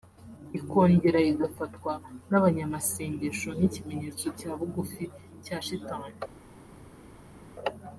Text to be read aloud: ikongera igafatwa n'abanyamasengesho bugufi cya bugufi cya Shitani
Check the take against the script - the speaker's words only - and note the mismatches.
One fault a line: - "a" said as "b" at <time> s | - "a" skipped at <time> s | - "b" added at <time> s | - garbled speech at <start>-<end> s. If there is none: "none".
- "bugufi" said as "nk'ikimenyetso" at 3.6 s